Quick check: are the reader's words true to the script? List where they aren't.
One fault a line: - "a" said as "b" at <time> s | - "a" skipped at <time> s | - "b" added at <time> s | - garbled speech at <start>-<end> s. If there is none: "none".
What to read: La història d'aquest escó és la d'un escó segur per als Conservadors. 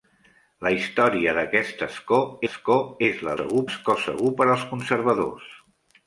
- "escó" added at 2.4 s
- "d'un" said as "segur" at 3.4 s